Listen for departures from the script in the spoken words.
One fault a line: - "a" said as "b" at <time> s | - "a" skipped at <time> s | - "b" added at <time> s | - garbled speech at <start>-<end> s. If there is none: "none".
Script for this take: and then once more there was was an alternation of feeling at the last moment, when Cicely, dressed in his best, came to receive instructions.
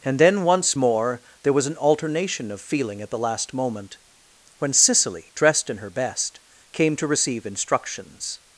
- "was" skipped at 1.7 s
- "his" said as "her" at 5.8 s